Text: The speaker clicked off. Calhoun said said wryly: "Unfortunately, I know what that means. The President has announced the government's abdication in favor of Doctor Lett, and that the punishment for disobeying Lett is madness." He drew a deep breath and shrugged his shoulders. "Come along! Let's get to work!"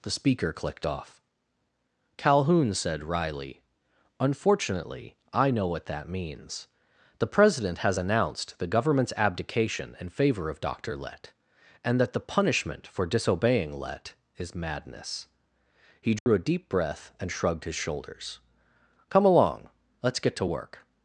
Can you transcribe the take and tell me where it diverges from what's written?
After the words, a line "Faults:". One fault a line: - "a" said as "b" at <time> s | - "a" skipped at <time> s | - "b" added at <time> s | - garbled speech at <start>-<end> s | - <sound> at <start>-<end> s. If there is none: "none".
The speaker clicked off. Calhoun said wryly: "Unfortunately, I know what that means. The President has announced the government's abdication in favor of Doctor Lett, and that the punishment for disobeying Lett is madness." He drew a deep breath and shrugged his shoulders. "Come along! Let's get to work!"
Faults:
- "said" skipped at 3.0 s
- dropout at 16.2-16.3 s